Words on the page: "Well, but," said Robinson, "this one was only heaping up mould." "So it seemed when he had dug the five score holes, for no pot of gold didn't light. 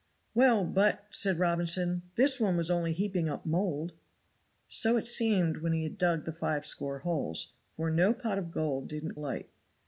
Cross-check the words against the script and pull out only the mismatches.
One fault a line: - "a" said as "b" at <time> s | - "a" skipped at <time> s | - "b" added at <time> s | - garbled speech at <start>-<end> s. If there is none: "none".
none